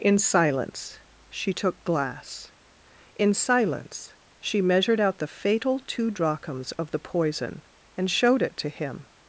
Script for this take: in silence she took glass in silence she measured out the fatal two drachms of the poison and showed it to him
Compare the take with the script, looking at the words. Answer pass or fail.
pass